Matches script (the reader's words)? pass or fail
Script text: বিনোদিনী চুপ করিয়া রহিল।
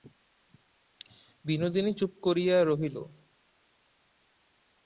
pass